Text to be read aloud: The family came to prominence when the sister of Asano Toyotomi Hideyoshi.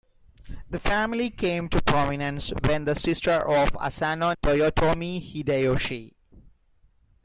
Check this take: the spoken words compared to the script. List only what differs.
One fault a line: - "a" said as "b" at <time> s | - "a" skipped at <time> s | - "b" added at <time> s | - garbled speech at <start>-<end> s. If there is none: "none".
none